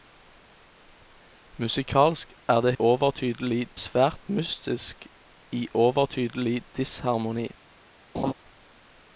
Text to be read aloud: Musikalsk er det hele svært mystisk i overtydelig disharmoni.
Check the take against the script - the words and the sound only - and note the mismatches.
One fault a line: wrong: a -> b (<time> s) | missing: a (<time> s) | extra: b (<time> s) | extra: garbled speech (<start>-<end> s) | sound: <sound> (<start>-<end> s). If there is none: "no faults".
wrong: hele -> overtydelig (2.8 s)
sound: laugh (8.1-8.3 s)